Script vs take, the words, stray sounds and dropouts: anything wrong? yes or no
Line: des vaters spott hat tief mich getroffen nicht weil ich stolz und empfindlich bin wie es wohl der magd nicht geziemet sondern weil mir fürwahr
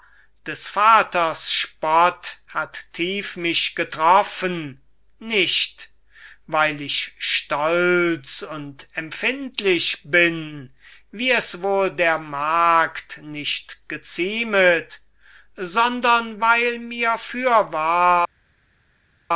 no